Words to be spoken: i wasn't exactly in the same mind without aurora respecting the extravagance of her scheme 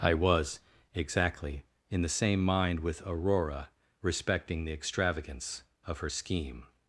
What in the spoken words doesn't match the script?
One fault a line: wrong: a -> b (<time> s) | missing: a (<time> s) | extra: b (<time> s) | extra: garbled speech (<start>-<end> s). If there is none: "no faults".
wrong: wasn't -> was (0.1 s)
wrong: without -> with (2.8 s)